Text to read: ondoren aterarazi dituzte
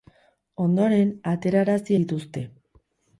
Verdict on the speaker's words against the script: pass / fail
pass